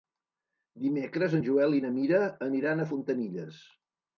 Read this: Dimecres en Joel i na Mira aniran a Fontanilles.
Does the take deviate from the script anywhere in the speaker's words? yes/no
no